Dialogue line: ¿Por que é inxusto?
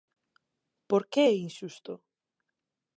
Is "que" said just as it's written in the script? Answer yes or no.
yes